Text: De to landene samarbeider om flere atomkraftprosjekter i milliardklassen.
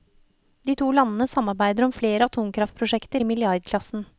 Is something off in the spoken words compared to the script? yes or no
no